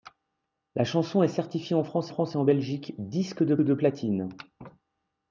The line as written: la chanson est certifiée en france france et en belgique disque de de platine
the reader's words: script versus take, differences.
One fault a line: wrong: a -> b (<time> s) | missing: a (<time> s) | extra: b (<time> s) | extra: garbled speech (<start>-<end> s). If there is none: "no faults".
no faults